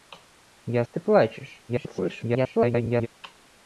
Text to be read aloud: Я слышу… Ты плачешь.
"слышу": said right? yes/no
no